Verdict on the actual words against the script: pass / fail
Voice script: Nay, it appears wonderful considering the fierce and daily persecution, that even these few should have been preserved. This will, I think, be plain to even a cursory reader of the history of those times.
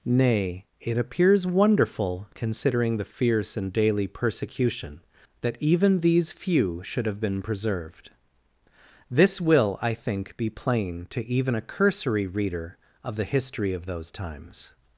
pass